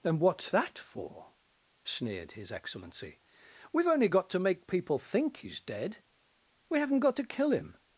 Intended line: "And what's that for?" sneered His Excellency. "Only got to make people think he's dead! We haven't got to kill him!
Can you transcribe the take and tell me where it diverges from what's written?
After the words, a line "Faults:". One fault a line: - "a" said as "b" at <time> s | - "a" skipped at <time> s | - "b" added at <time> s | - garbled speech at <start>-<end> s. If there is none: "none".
"And what's that for?" sneered His Excellency. "We've only got to make people think he's dead! We haven't got to kill him!
Faults:
- "We've" added at 3.7 s